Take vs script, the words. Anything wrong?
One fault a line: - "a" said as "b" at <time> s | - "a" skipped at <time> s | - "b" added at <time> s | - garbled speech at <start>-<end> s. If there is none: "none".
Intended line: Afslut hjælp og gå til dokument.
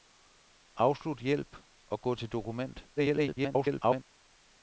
- garbled speech at 3.0-4.0 s